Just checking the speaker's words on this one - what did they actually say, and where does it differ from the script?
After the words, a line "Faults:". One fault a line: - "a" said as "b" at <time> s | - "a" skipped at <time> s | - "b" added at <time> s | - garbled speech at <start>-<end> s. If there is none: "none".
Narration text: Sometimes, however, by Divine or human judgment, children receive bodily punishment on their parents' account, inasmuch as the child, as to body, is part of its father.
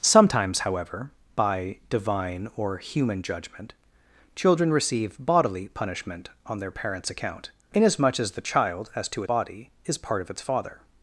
Sometimes, however, by Divine or human judgment, children receive bodily punishment on their parents' account, inasmuch as the child, as to body, is part of its father.
Faults:
none